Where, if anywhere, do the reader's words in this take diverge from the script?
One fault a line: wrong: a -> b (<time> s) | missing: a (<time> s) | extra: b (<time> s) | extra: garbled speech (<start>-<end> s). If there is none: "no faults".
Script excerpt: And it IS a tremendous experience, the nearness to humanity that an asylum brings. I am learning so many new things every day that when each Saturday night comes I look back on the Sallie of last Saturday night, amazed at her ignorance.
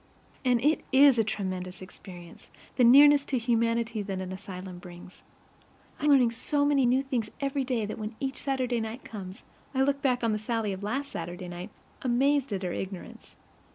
missing: am (6.1 s)